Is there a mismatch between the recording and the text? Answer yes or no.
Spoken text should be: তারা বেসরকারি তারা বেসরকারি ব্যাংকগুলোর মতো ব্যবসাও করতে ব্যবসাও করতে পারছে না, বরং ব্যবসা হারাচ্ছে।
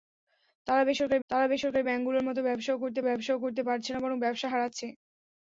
no